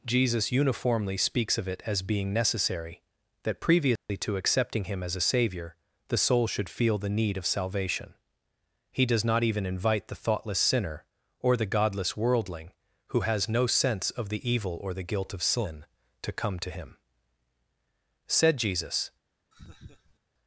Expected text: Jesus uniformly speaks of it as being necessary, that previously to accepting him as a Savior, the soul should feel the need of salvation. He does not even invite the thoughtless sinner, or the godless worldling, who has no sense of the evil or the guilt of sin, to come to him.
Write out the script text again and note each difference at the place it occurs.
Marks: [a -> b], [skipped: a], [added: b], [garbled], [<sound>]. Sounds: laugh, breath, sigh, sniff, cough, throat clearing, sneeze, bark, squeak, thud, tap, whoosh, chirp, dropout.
Jesus uniformly speaks of it as being necessary, that previously [dropout] to accepting him as a Savior, the soul should feel the need of salvation. He does not even invite the thoughtless sinner, or the godless worldling, who has no sense of the evil or the guilt of sin, to come to him. [added: Said Jesus] [laugh]